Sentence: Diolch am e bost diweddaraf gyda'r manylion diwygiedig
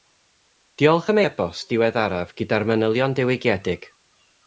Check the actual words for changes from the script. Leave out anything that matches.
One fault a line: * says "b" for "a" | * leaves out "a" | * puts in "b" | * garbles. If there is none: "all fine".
all fine